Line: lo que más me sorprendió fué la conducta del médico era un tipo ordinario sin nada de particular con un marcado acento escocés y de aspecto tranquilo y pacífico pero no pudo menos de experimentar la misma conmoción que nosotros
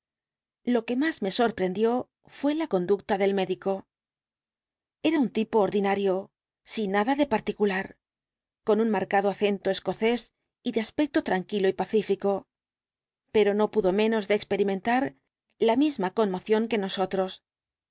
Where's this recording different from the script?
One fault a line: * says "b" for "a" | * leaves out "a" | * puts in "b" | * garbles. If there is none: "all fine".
all fine